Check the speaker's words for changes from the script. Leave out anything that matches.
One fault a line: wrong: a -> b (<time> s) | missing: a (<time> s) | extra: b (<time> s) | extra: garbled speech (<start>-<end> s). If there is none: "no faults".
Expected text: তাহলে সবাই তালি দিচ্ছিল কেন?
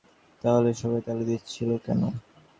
no faults